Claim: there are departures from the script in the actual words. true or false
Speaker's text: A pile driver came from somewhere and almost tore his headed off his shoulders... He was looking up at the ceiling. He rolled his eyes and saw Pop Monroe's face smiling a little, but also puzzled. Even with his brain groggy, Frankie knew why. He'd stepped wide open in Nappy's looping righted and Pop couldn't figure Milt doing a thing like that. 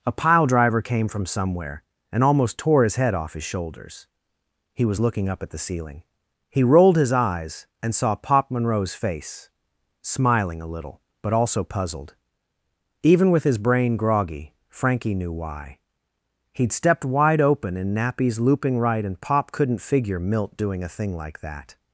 true